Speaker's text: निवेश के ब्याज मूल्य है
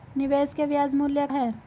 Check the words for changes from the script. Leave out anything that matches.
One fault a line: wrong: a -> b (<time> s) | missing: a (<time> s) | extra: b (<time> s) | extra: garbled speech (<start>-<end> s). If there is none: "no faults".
no faults